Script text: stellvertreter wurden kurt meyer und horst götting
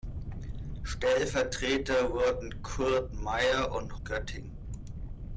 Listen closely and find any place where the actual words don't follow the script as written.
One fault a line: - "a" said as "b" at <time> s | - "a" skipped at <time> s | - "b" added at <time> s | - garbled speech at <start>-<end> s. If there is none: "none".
- "horst" skipped at 4.0 s